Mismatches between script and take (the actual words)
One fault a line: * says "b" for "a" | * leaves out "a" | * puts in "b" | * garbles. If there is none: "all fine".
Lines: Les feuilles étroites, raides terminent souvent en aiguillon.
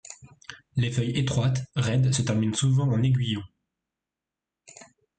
* puts in "se"